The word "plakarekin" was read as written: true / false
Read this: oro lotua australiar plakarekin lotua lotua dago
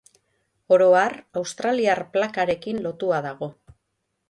true